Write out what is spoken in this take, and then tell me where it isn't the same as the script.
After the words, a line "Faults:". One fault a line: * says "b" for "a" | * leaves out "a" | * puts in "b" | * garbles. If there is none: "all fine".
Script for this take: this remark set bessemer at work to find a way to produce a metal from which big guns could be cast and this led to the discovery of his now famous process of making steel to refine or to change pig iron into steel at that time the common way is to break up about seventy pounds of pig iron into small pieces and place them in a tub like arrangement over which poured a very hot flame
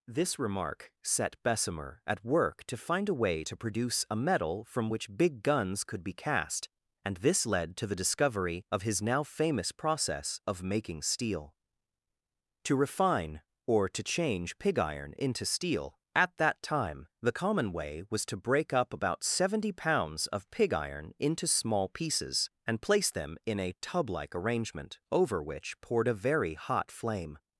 this remark set bessemer at work to find a way to produce a metal from which big guns could be cast and this led to the discovery of his now famous process of making steel to refine or to change pig iron into steel at that time the common way was to break up about seventy pounds of pig iron into small pieces and place them in a tub like arrangement over which poured a very hot flame
Faults:
* says "was" for "is"